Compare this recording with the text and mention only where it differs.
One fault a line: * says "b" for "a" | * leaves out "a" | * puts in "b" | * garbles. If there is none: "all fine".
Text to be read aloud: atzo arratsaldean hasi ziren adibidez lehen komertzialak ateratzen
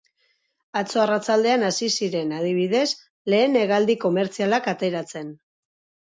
* puts in "hegaldi"